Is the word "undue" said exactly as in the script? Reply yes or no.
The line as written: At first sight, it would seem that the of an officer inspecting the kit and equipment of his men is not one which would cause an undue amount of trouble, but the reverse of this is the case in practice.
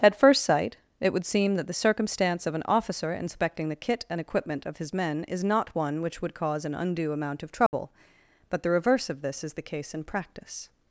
yes